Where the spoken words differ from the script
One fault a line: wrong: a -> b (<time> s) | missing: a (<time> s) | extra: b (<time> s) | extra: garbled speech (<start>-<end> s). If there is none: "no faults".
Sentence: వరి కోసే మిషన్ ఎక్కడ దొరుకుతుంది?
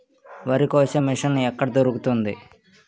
no faults